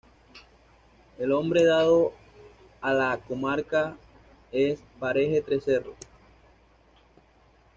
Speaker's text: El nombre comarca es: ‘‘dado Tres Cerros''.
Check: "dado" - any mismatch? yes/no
yes